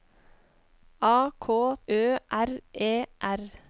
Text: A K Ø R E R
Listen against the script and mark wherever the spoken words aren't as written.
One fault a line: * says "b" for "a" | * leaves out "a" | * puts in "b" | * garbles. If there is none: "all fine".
all fine